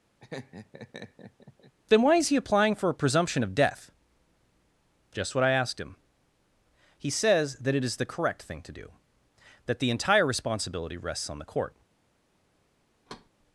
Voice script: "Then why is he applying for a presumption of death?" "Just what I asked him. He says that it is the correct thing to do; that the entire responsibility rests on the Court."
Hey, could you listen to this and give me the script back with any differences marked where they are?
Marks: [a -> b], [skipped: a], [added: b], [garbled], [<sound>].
[laugh] "Then why is he applying for a presumption of death?" "Just what I asked him. He says that it is the correct thing to do; that the entire responsibility rests on the Court." [thud]